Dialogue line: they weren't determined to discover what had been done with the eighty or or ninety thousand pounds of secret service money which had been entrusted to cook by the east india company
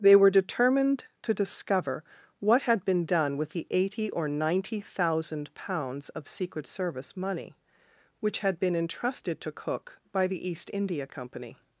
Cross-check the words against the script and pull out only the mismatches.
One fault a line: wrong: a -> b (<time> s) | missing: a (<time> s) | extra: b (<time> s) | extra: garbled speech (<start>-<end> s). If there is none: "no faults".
wrong: weren't -> were (0.1 s)
missing: or (4.3 s)